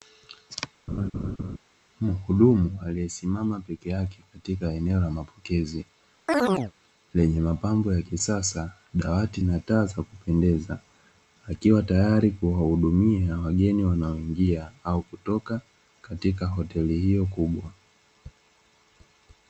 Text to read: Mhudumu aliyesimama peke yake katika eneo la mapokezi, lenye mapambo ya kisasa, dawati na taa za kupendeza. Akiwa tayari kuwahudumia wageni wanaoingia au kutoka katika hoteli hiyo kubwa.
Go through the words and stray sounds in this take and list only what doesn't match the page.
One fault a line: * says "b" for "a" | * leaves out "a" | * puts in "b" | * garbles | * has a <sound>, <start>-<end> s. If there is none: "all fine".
* has a laugh, 0.9-1.6 s
* has a chirp, 6.3-6.7 s